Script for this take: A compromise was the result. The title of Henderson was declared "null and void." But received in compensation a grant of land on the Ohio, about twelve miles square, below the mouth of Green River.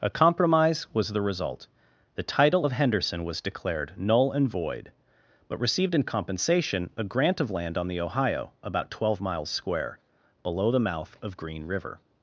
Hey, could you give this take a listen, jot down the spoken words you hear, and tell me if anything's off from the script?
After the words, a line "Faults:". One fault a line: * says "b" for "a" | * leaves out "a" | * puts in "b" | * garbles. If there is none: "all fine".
A compromise was the result. The title of Henderson was declared "null and void." But received in compensation a grant of land on the Ohio, about twelve miles square, below the mouth of Green River.
Faults:
all fine